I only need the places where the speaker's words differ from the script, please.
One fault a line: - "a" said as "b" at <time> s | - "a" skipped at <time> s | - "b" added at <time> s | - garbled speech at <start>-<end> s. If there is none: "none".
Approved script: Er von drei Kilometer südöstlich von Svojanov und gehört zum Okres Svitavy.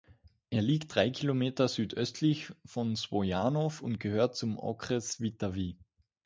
- "von" said as "liegt" at 0.6 s